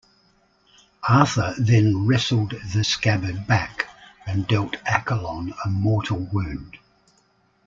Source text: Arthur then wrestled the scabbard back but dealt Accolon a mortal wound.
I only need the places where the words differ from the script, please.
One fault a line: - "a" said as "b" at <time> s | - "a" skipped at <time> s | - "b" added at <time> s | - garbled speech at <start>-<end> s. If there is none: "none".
- "but" said as "and" at 4.3 s